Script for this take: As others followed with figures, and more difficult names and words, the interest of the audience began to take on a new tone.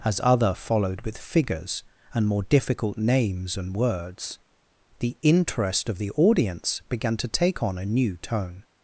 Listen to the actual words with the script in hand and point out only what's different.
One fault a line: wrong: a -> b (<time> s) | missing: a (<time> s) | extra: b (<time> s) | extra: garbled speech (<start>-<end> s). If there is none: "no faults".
wrong: others -> other (0.2 s)